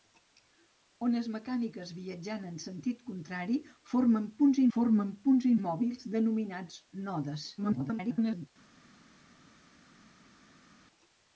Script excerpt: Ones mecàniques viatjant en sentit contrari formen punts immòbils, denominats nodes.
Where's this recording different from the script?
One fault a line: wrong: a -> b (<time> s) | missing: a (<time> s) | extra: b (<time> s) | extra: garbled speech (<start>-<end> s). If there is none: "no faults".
extra: formen punts (4.8 s)
extra: garbled speech (7.6-8.5 s)